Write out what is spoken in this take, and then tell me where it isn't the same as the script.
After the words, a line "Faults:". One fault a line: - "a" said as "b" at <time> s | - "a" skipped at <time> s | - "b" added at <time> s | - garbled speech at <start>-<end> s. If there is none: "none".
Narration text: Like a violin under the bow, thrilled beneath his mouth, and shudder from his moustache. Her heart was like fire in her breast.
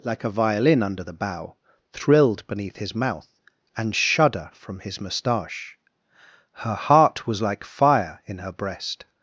Like a violin under the bow, thrilled beneath his mouth, and shudder from his moustache. Her heart was like fire in her breast.
Faults:
none